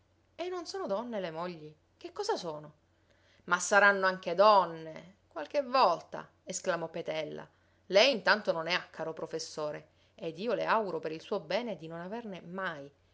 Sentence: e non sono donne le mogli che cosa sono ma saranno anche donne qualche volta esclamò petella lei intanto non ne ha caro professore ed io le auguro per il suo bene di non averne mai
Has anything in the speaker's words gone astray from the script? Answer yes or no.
no